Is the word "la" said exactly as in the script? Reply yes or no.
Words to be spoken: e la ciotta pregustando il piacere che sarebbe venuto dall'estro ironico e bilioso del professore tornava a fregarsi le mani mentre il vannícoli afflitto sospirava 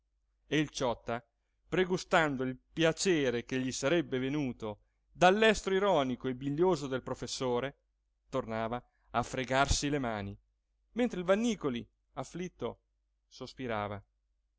no